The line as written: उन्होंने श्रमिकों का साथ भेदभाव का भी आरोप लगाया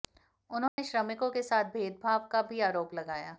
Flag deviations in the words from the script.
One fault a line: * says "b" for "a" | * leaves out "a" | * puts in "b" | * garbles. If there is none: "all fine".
* says "के" for "का"